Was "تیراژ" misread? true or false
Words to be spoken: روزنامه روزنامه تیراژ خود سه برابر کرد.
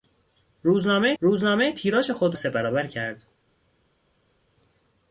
false